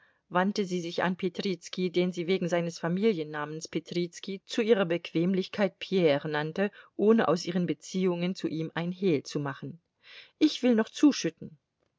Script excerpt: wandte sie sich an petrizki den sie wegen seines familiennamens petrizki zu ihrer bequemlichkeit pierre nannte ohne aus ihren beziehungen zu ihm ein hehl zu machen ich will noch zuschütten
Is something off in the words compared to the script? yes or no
no